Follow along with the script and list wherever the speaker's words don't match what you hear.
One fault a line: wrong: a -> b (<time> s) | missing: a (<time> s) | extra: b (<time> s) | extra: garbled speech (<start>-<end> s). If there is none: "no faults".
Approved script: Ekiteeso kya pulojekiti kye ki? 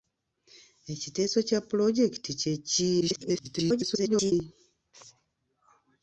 extra: garbled speech (3.0-4.3 s)